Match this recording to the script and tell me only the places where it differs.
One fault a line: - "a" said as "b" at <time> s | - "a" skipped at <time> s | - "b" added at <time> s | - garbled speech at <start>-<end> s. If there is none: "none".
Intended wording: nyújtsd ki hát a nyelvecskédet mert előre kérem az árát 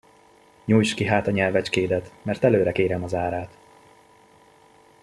none